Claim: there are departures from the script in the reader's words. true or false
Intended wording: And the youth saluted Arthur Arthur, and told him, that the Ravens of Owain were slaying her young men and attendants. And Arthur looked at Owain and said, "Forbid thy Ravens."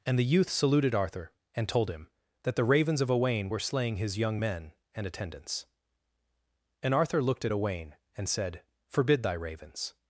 true